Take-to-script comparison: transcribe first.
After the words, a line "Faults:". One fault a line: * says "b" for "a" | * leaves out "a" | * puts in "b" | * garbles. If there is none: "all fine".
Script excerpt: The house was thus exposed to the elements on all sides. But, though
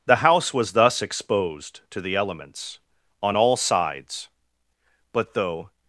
The house was thus exposed to the elements on all sides. But, though
Faults:
all fine